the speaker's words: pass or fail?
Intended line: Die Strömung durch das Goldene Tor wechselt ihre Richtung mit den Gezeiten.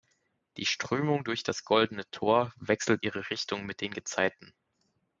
pass